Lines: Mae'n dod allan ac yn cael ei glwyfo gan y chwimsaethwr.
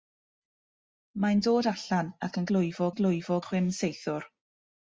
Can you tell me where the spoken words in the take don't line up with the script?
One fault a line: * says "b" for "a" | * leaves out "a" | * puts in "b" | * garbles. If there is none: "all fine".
* says "glwyfo" for "cael"
* leaves out "gan"